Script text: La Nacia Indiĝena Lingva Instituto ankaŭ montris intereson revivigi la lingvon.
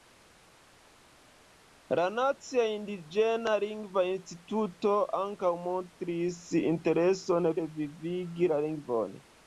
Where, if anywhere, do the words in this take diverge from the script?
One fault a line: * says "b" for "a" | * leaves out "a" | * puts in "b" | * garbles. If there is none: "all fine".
all fine